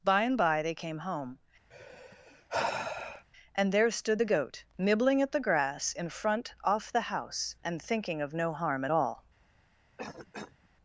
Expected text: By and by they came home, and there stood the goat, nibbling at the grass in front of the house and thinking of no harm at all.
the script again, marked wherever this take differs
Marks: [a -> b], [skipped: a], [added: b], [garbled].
By and by they came home, and there stood the goat, nibbling at the grass in front [of -> off] the house and thinking of no harm at all.